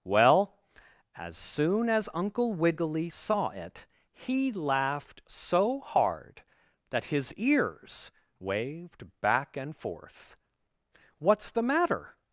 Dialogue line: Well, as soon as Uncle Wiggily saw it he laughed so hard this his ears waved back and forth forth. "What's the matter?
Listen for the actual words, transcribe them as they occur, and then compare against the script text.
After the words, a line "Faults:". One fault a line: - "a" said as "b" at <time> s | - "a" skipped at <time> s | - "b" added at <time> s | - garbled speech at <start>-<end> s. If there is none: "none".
Well, as soon as Uncle Wiggily saw it he laughed so hard that his ears waved back and forth. "What's the matter?
Faults:
- "this" said as "that" at 6.9 s
- "forth" skipped at 10.4 s